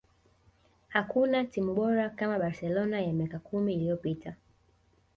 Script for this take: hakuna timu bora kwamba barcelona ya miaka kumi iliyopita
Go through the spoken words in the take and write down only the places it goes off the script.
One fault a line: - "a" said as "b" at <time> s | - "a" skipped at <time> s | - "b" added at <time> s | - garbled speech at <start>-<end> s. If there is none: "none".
- "kwamba" said as "kama" at 2.1 s